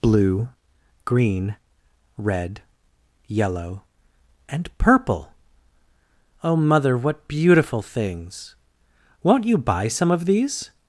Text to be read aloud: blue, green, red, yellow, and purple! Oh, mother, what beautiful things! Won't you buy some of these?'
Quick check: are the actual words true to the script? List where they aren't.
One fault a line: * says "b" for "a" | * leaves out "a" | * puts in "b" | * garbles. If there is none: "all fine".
all fine